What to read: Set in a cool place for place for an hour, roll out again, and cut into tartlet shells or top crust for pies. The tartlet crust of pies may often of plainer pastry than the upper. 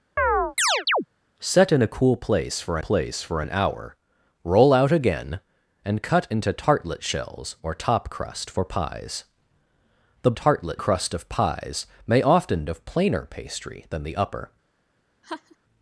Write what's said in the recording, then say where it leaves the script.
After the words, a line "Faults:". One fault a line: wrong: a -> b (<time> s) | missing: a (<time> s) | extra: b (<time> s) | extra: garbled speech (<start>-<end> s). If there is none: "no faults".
Set in a cool place for place for an hour, roll out again, and cut into tartlet shells or top crust for pies. The tartlet crust of pies may often of plainer pastry than the upper.
Faults:
no faults